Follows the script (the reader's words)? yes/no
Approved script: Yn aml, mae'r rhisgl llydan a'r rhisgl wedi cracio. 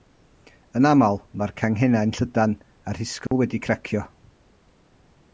no